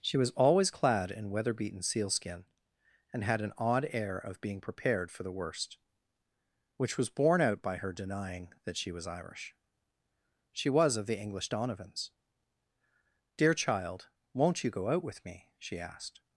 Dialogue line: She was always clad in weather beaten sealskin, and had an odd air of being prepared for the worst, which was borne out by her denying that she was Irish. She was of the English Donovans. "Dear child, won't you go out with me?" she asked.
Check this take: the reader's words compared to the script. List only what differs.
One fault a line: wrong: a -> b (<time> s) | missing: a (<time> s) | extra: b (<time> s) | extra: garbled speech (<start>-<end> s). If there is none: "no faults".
no faults